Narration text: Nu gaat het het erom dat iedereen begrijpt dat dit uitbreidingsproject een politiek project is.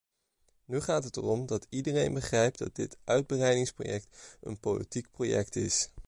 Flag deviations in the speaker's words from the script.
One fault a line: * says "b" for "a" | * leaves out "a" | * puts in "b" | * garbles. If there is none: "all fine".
* leaves out "het"